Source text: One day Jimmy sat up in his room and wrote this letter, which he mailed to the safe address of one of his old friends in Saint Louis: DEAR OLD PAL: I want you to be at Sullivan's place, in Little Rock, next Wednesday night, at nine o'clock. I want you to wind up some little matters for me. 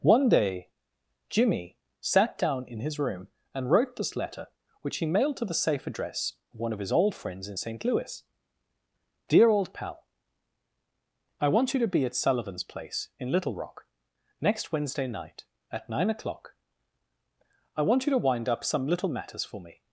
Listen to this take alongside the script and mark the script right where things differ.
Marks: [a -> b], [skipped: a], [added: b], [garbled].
One day Jimmy sat [up -> down] in his room and wrote this letter, which he mailed to the safe address of one of his old friends in Saint Louis: DEAR OLD PAL: I want you to be at Sullivan's place, in Little Rock, next Wednesday night, at nine o'clock. I want you to wind up some little matters for me.